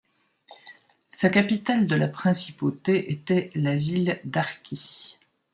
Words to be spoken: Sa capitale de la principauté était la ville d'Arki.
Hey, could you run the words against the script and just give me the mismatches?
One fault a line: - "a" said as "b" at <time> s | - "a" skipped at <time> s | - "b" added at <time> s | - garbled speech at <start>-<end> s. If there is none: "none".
none